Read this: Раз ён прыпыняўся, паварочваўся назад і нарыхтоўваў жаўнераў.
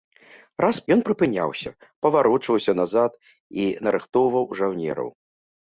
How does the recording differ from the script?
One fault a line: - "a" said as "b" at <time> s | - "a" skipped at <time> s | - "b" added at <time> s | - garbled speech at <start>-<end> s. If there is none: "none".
none